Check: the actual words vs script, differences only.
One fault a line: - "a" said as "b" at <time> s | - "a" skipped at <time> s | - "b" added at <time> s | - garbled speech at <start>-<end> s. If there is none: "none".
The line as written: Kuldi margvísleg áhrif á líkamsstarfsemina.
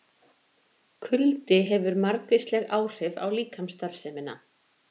- "hefur" added at 1.6 s